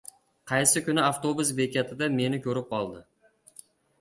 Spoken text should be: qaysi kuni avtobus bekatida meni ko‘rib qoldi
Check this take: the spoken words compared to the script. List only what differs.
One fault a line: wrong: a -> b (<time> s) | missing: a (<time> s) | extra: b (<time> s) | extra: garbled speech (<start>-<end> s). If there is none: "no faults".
no faults